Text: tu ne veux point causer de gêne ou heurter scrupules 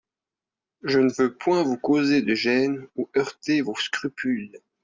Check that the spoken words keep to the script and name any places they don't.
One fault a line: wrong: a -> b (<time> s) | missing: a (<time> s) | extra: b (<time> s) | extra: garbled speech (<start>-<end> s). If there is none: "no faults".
wrong: tu -> je (0.8 s)
extra: vous (1.6 s)
extra: vos (3.6 s)